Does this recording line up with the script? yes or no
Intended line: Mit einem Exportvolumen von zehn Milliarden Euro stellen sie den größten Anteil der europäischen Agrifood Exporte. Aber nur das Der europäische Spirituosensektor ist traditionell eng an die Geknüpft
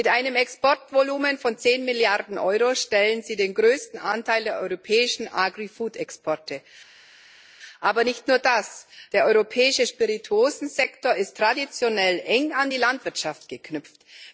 no